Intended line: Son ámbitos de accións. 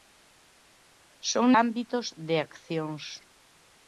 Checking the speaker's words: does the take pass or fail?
pass